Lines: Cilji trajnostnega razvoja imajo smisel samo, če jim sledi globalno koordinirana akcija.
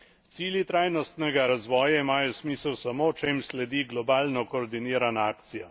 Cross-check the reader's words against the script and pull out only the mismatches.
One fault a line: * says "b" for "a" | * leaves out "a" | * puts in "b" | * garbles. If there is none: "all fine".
all fine